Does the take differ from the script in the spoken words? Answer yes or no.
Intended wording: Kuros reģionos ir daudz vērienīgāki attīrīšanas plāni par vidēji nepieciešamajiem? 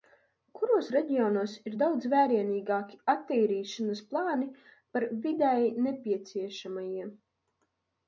no